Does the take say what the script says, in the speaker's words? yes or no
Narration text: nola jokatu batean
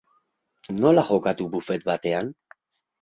no